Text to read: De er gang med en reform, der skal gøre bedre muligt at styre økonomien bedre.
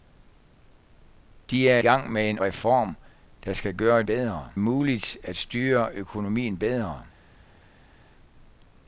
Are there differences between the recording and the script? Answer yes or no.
no